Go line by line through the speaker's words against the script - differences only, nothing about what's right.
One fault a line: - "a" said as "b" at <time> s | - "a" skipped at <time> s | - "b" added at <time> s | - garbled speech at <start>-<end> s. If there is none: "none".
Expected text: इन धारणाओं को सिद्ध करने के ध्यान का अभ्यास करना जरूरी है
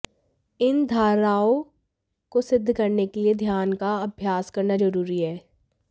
- "लिए" added at 3.2 s